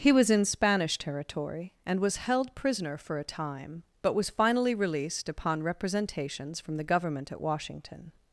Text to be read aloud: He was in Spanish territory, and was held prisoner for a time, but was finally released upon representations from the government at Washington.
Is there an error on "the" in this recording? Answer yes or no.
no